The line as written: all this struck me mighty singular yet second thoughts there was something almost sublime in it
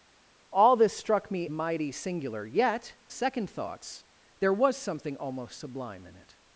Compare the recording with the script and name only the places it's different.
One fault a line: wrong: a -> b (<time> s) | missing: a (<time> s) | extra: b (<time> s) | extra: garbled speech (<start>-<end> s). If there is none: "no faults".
no faults